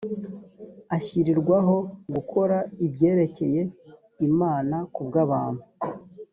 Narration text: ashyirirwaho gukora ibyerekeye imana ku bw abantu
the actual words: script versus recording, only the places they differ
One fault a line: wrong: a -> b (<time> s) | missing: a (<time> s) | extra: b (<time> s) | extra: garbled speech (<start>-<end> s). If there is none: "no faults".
no faults